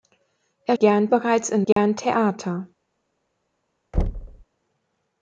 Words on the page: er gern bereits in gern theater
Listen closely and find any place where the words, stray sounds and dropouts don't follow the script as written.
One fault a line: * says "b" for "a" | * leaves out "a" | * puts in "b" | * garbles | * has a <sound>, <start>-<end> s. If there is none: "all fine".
* has a dropout, 1.7-1.8 s
* has a thud, 3.9-4.4 s